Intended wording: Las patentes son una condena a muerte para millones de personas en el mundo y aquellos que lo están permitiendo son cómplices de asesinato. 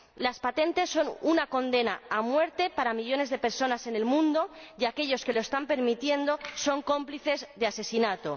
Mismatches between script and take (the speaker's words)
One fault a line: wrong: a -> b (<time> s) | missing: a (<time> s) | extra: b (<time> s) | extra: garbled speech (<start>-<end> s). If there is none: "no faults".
no faults